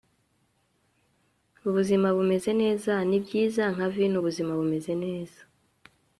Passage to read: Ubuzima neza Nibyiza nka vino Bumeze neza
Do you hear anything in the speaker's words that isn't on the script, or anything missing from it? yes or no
yes